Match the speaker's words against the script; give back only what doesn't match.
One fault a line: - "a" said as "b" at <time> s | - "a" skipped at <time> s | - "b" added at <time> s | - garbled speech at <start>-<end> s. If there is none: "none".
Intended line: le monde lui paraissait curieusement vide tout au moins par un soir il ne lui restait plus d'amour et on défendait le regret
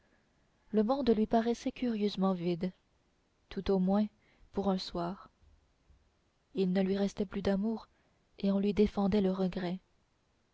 - "par" said as "pour" at 4.5 s
- "lui" added at 8.6 s